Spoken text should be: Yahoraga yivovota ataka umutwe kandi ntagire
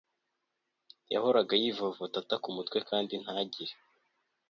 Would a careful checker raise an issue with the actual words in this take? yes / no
no